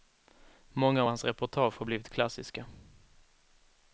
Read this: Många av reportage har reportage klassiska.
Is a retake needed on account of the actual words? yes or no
yes